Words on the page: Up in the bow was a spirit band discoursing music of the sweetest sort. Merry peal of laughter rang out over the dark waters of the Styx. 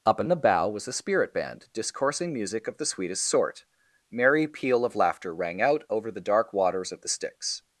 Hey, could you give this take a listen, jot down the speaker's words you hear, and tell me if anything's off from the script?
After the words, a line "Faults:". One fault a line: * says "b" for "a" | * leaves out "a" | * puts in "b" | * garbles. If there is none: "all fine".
Up in the bow was a spirit band discoursing music of the sweetest sort. Merry peal of laughter rang out over the dark waters of the Styx.
Faults:
all fine